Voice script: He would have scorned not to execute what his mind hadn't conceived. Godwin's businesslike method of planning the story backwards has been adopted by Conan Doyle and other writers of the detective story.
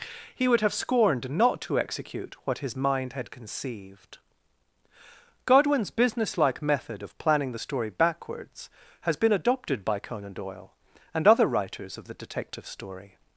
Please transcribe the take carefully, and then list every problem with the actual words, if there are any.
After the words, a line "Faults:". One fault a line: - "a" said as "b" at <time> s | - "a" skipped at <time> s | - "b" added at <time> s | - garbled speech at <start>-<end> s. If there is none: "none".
He would have scorned not to execute what his mind had conceived. Godwin's businesslike method of planning the story backwards has been adopted by Conan Doyle and other writers of the detective story.
Faults:
- "hadn't" said as "had" at 3.1 s